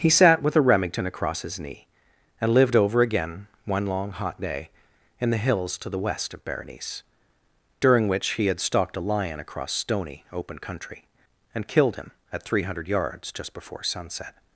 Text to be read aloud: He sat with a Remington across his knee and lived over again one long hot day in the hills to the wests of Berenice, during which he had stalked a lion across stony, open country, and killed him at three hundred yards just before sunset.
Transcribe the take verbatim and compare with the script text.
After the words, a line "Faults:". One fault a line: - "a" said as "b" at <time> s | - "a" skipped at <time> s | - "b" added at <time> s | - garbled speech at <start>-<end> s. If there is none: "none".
He sat with a Remington across his knee and lived over again one long hot day in the hills to the west of Berenice, during which he had stalked a lion across stony, open country, and killed him at three hundred yards just before sunset.
Faults:
- "wests" said as "west" at 6.0 s